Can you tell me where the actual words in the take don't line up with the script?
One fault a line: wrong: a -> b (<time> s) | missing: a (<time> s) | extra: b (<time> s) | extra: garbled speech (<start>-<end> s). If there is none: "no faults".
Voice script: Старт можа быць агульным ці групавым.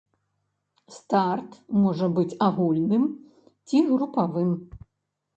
no faults